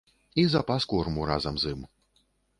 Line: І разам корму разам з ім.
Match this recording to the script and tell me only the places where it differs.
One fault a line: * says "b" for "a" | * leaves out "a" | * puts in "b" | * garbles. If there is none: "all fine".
* says "запас" for "разам"